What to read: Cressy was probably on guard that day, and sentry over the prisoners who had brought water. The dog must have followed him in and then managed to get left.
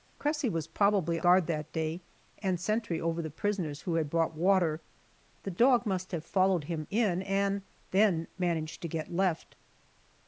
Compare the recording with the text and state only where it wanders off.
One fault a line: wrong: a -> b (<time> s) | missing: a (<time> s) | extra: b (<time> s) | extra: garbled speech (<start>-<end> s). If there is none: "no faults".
missing: on (1.2 s)